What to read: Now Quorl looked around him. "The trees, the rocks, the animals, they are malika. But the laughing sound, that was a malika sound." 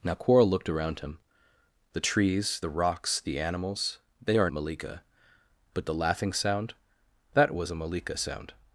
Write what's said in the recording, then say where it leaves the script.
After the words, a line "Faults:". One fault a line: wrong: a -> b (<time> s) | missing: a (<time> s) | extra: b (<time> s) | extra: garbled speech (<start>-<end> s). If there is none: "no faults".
Now Quorl looked around him. "The trees, the rocks, the animals, they are malika. But the laughing sound, that was a malika sound."
Faults:
no faults